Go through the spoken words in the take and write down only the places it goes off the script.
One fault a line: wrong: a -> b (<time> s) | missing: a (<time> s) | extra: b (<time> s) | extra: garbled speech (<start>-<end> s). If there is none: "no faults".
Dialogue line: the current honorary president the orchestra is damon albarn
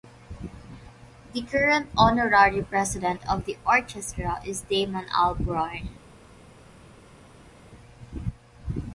extra: of (3.3 s)